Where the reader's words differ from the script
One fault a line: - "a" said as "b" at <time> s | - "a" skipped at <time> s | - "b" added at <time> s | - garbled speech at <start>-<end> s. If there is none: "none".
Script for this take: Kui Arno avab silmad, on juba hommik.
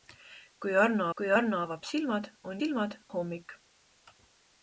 - "kui Arno" added at 1.2 s
- "juba" said as "silmad" at 2.6 s